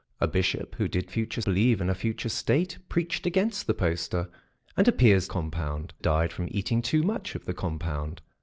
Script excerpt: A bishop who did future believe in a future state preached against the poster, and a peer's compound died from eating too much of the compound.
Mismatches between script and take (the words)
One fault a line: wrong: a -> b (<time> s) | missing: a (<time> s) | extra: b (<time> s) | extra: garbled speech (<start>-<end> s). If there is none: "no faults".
no faults